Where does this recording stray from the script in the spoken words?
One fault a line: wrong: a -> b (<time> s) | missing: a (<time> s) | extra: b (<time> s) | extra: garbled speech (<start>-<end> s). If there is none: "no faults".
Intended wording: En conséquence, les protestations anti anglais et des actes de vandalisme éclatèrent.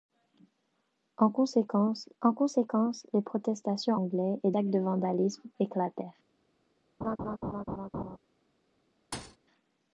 extra: en conséquence (2.2 s)
missing: anti (4.0 s)
missing: des (4.5 s)